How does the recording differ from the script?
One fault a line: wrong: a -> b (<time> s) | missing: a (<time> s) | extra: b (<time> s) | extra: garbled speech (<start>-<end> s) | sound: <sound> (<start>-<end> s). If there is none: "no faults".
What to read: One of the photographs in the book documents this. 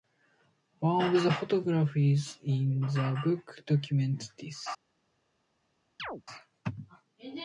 sound: chirp (6.0-6.2 s)